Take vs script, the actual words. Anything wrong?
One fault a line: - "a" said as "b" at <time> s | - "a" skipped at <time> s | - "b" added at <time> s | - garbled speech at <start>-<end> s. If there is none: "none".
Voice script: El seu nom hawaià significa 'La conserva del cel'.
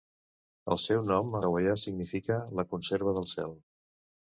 none